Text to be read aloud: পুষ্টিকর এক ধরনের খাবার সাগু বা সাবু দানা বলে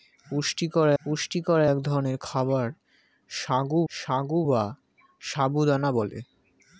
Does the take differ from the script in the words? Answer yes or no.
yes